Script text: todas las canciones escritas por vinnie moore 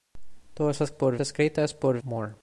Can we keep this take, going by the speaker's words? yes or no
no